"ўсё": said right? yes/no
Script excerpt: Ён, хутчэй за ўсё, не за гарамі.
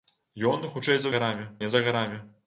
no